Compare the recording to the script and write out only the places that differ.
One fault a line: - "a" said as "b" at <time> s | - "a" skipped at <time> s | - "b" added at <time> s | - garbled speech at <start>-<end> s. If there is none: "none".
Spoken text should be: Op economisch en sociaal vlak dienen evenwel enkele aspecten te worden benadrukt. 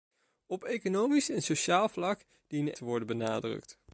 - "evenwel enkele aspecten" skipped at 2.7 s